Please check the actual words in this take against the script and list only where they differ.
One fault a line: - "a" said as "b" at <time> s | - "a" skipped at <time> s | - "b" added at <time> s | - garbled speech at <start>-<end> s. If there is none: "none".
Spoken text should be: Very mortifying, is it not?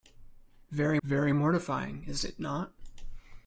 - "very" added at 1.0 s